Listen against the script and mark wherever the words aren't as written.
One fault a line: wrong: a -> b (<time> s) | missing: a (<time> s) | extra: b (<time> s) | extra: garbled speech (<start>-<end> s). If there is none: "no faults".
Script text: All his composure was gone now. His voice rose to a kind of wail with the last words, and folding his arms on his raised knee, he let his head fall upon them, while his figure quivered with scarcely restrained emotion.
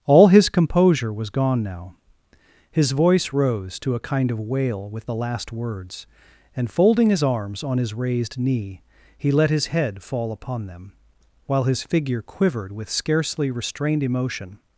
no faults